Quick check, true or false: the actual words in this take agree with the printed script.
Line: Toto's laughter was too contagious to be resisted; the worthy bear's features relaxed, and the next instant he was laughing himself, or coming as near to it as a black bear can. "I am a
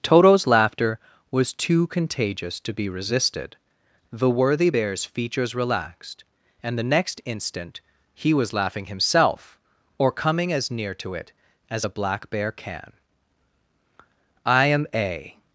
true